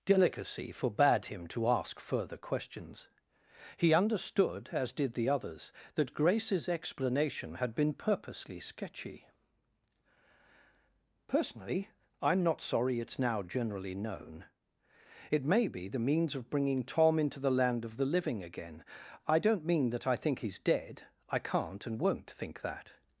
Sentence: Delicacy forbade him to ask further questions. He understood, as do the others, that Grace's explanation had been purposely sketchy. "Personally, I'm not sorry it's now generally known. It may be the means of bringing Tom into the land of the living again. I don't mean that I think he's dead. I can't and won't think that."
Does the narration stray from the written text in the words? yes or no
yes